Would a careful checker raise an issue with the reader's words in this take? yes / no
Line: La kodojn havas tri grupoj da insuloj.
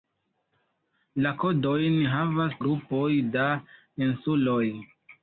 yes